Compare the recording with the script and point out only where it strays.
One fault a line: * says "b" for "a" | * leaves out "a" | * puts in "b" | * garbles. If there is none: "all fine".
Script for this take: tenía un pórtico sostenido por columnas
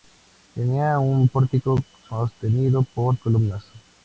all fine